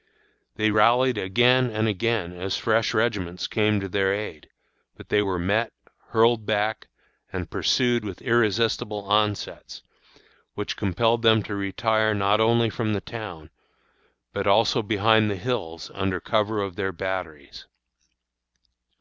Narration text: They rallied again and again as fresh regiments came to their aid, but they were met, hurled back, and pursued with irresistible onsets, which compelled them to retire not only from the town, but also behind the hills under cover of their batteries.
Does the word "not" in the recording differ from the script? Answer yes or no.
no